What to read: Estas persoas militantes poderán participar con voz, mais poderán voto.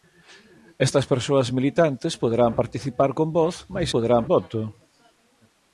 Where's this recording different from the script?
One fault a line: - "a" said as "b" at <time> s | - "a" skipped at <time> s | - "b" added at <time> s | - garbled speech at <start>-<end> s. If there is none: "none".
none